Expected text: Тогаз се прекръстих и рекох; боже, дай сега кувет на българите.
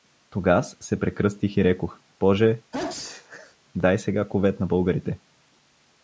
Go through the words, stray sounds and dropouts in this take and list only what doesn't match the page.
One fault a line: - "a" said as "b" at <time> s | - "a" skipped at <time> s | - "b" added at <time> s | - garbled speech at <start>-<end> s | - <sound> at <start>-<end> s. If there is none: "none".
- sneeze at 2.7-3.6 s